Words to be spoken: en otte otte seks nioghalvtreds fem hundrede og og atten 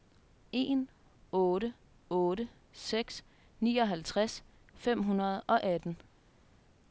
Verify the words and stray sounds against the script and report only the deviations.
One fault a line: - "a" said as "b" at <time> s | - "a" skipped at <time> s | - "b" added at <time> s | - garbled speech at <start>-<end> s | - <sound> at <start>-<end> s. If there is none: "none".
- "og" skipped at 5.6 s